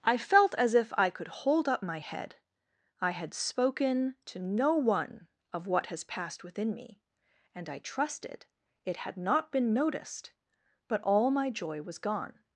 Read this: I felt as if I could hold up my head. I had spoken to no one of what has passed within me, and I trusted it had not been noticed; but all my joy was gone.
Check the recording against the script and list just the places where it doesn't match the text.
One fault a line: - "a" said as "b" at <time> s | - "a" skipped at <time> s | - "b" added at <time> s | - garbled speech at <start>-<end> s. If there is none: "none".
none